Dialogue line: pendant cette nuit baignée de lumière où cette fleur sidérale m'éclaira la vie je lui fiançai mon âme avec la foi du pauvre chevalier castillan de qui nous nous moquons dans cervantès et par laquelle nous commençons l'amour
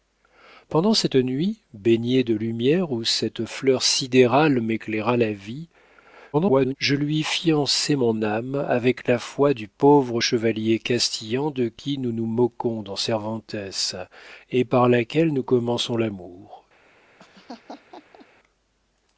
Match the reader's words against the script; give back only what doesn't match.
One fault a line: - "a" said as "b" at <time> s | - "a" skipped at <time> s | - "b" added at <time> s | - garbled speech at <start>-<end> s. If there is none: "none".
- garbled speech at 6.3-6.8 s